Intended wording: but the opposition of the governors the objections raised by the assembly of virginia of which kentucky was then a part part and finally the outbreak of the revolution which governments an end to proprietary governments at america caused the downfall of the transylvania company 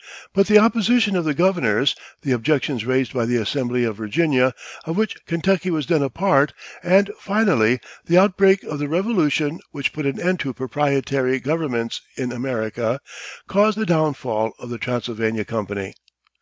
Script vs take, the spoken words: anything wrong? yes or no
yes